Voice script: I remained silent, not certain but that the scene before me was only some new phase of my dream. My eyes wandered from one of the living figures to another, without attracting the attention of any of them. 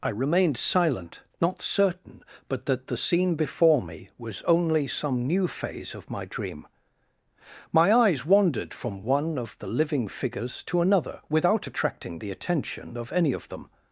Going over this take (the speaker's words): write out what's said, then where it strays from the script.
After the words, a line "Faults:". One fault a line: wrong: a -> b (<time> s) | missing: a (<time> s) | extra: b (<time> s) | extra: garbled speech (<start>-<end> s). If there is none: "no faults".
I remained silent, not certain but that the scene before me was only some new phase of my dream. My eyes wandered from one of the living figures to another, without attracting the attention of any of them.
Faults:
no faults